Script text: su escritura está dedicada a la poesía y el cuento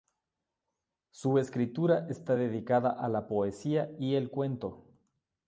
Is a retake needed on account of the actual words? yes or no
no